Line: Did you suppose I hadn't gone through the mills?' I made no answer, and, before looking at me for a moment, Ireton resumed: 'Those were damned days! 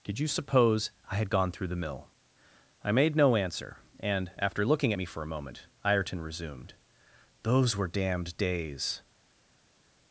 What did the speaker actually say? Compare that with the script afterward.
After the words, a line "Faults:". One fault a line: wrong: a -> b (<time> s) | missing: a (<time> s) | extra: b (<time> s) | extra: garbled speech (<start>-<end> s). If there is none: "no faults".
Did you suppose I had gone through the mill?' I made no answer, and, after looking at me for a moment, Ireton resumed: 'Those were damned days!
Faults:
wrong: hadn't -> had (1.1 s)
wrong: mills -> mill (1.8 s)
wrong: before -> after (4.4 s)